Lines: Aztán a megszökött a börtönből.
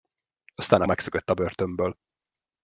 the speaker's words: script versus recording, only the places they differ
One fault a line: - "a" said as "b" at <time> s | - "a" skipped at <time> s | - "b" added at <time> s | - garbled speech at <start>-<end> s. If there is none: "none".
none